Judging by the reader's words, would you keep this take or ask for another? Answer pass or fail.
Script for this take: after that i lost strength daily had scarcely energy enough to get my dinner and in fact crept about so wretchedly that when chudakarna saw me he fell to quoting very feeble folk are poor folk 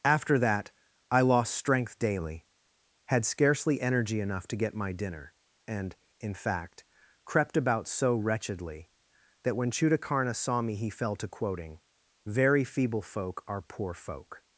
pass